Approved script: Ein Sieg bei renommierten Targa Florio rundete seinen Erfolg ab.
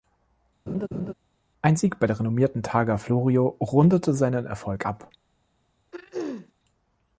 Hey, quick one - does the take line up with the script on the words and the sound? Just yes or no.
no